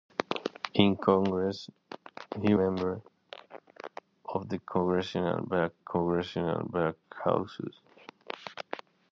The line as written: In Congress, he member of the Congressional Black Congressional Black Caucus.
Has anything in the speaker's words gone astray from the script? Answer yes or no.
no